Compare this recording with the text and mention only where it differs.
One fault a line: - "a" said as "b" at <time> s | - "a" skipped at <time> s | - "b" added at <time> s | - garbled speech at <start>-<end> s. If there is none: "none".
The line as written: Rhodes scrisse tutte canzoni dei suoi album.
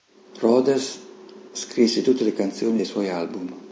- "le" added at 2.2 s